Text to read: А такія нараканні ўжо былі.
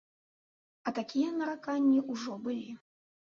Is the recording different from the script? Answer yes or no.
no